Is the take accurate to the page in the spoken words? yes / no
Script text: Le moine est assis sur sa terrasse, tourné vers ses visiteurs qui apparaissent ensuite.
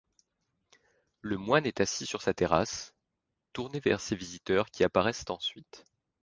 yes